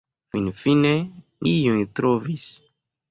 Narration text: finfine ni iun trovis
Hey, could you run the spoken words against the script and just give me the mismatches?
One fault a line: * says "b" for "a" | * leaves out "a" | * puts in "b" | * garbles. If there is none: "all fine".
* leaves out "ni"